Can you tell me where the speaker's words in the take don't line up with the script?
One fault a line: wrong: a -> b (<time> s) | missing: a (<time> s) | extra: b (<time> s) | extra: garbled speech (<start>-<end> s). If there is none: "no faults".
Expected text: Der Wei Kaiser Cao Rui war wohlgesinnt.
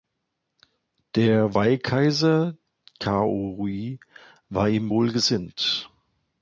extra: ihm (4.7 s)